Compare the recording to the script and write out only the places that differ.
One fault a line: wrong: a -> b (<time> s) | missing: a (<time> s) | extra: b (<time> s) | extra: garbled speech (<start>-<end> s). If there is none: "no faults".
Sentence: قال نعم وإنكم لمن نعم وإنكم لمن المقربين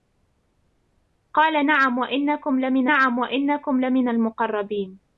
no faults